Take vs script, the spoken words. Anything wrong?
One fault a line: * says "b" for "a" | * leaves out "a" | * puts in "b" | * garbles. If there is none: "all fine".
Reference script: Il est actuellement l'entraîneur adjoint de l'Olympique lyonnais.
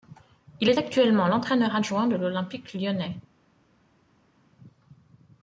all fine